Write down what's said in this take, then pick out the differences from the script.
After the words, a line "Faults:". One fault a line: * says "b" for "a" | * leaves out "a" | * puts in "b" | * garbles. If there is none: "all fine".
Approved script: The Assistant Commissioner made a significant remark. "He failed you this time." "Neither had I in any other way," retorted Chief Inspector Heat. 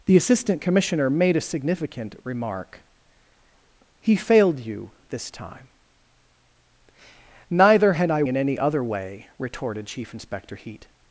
The Assistant Commissioner made a significant remark. "He failed you this time." "Neither had I in any other way," retorted Chief Inspector Heat.
Faults:
all fine